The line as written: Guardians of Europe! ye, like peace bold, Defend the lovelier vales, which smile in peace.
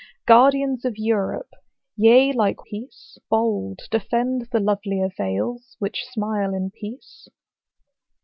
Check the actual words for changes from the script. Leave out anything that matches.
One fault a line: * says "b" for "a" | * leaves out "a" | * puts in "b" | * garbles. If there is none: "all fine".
all fine